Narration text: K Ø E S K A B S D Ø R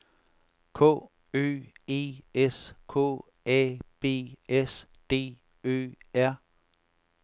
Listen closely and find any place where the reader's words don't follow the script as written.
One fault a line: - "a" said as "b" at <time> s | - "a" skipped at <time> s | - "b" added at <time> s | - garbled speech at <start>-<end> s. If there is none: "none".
none